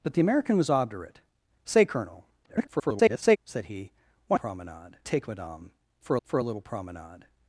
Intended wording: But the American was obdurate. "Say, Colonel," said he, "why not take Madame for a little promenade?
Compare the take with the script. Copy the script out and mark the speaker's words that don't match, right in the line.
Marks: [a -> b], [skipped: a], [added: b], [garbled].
But the American was obdurate. "Say, Colonel," [garbled] said he, "why [not -> promenade] take Madame for [added: for] a little promenade?